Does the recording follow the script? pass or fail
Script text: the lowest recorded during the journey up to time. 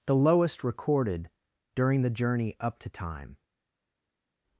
pass